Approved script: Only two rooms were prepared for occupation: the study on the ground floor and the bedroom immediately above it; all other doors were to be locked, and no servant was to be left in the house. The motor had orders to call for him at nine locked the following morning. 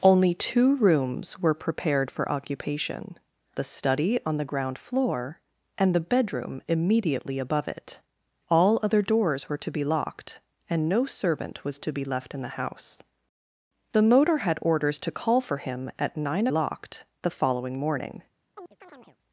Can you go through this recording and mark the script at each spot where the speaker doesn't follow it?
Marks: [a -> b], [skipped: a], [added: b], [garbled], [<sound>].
Only two rooms were prepared for occupation: the study on the ground floor and the bedroom immediately above it; all other doors were to be locked, and no servant was to be left in the house. The motor had orders to call for him at nine locked the following morning. [chirp]